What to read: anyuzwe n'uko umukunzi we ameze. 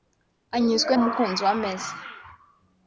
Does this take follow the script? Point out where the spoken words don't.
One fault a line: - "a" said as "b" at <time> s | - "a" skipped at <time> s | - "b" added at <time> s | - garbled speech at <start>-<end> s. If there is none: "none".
- "n'uko" skipped at 0.9 s